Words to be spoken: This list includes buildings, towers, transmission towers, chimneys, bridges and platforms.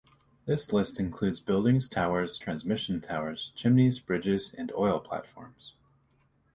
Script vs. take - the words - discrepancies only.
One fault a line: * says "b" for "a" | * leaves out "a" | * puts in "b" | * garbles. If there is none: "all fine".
* puts in "oil"